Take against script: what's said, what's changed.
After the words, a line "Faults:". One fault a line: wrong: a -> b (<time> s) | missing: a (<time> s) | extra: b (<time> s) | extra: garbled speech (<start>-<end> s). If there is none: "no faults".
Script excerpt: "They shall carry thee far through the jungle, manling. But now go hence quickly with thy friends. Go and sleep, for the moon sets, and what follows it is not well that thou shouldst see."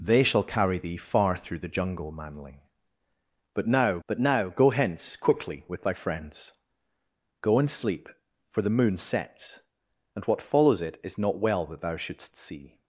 "They shall carry thee far through the jungle, manling. But now but now go hence quickly with thy friends. Go and sleep, for the moon sets, and what follows it is not well that thou shouldst see."
Faults:
extra: but now (4.1 s)